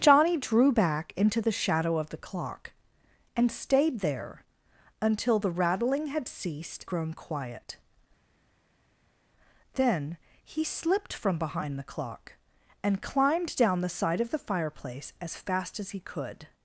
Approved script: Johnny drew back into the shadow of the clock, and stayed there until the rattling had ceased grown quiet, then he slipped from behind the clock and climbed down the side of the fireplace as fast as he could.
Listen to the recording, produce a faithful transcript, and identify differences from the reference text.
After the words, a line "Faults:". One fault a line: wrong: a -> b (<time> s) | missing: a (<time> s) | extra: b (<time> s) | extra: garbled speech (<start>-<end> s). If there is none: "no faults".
Johnny drew back into the shadow of the clock, and stayed there until the rattling had ceased grown quiet, then he slipped from behind the clock and climbed down the side of the fireplace as fast as he could.
Faults:
no faults